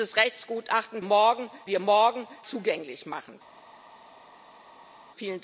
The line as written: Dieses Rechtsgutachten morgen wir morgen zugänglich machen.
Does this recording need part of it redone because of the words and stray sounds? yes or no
no